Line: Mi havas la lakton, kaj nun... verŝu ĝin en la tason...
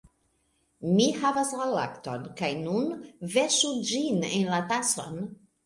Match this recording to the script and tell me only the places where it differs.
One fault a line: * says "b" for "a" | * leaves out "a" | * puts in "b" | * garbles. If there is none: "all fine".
all fine